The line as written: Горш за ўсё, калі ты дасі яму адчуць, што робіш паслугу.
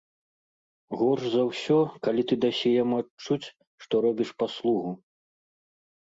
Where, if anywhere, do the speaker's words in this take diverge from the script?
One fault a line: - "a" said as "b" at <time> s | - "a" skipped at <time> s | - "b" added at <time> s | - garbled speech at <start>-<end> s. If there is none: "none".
none